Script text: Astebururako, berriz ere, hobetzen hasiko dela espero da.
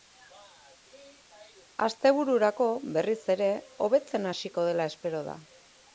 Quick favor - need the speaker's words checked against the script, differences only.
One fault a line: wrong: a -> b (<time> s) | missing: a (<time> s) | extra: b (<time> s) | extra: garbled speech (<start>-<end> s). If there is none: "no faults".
no faults